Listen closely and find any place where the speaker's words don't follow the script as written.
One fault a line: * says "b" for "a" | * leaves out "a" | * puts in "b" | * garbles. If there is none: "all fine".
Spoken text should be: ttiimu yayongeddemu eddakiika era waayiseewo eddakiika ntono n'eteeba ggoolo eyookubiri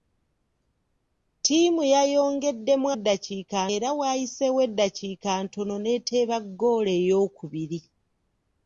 all fine